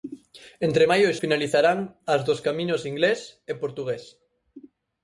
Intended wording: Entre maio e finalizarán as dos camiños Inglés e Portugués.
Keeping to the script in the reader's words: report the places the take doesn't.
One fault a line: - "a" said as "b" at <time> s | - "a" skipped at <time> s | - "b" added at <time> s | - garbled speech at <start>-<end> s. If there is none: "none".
none